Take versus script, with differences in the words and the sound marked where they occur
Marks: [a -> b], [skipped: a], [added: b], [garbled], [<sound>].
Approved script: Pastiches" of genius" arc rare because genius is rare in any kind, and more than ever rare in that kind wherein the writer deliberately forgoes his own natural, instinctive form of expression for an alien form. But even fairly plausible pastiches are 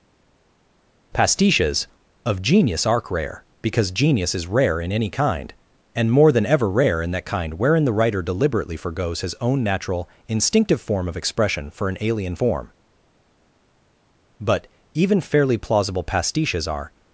Pastiches" of genius" arc rare because genius is rare in any kind, and more than ever rare in that kind wherein the writer deliberately forgoes his own natural, instinctive form of expression for an alien form. But even fairly plausible pastiches are